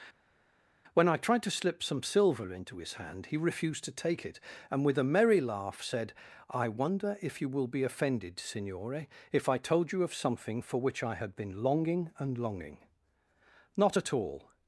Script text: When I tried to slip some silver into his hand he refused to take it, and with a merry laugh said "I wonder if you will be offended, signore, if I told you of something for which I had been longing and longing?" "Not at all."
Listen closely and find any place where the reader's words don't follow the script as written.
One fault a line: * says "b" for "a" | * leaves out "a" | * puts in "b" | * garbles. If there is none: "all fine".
all fine